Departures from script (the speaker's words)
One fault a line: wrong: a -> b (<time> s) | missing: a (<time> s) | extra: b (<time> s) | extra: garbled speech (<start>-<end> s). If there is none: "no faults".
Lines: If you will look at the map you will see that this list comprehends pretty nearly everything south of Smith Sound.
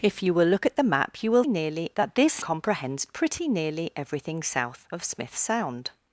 wrong: see -> nearly (1.5 s)
missing: list (2.4 s)